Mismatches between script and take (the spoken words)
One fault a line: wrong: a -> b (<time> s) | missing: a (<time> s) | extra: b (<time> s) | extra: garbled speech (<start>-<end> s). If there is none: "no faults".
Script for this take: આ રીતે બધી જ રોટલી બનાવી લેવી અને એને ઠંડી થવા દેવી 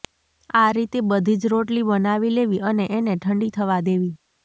no faults